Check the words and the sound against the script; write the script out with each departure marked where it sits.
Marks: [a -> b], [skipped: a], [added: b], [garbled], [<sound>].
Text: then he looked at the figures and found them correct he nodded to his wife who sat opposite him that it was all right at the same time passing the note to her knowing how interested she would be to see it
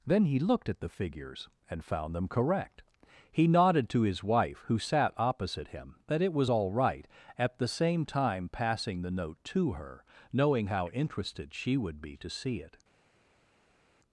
then he looked at the figures and found them correct he nodded to his wife who sat opposite him that it was all right at the same time passing the note to her knowing how interested she would be to see it